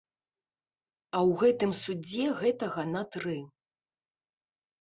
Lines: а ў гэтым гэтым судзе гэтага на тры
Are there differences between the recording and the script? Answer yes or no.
yes